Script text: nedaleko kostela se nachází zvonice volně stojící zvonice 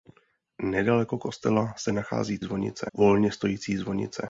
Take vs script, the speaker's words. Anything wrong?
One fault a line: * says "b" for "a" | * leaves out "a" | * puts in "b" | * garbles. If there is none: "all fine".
all fine